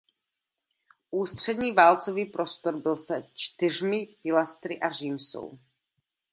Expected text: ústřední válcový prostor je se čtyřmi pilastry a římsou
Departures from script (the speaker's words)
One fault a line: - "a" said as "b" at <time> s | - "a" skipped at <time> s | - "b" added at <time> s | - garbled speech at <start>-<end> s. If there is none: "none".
- "je" said as "byl" at 2.8 s